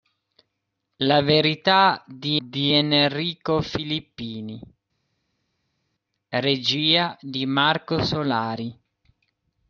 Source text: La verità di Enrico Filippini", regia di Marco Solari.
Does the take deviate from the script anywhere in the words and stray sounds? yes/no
yes